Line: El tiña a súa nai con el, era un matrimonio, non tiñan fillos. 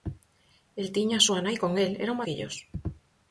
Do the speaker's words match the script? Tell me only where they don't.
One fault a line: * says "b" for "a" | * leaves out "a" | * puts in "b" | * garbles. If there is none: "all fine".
* leaves out "matrimonio non tiñan"